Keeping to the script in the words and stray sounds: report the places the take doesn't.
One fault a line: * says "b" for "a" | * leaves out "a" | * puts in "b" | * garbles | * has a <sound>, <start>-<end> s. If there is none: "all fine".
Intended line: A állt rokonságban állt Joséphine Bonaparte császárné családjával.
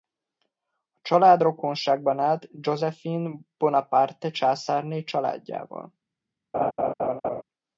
* says "család" for "állt"
* has a laugh, 6.5-7.4 s